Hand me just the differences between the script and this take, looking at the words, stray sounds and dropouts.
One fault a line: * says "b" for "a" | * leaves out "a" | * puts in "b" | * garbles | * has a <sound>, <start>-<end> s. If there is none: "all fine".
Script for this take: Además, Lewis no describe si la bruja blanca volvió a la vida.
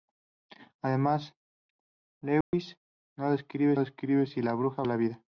* has a dropout, 2.4-2.5 s
* puts in "describe"
* leaves out "blanca volvió"